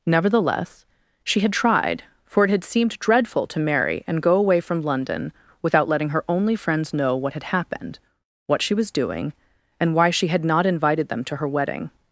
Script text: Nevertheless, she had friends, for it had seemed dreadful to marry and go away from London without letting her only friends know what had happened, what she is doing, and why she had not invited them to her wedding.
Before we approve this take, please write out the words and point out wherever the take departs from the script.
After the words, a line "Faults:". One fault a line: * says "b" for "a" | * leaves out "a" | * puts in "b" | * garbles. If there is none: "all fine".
Nevertheless, she had tried, for it had seemed dreadful to marry and go away from London without letting her only friends know what had happened, what she was doing, and why she had not invited them to her wedding.
Faults:
* says "tried" for "friends"
* says "was" for "is"